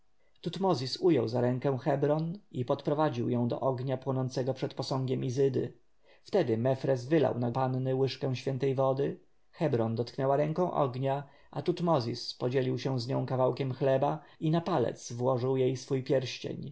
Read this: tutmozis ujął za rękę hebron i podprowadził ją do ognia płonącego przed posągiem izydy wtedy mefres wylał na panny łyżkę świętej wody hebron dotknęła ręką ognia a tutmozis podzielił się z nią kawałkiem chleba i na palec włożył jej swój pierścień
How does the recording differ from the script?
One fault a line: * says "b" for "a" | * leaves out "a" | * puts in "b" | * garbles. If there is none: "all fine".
all fine